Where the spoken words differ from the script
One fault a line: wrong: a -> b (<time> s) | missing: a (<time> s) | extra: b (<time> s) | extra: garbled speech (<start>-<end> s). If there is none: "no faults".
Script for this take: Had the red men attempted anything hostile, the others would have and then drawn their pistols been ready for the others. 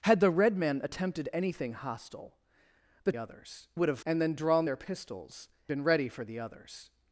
no faults